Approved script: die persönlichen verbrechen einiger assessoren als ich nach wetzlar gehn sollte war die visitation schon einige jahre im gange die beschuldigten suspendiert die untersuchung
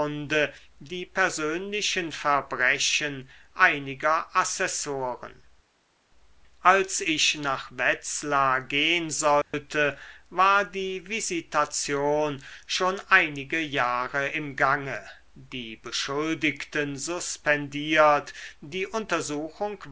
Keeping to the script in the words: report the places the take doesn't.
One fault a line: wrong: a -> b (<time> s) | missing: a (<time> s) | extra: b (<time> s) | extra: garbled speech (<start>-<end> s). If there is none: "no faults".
no faults